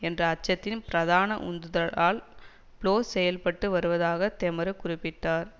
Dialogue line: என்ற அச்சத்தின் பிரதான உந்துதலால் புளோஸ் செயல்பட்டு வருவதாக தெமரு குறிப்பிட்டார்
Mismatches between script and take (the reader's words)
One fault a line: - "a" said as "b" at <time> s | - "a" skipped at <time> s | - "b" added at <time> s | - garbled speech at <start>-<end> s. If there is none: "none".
none